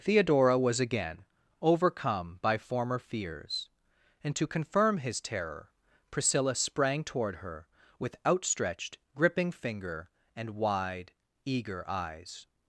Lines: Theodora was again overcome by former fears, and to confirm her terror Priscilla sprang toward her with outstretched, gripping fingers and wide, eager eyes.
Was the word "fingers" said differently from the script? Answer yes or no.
yes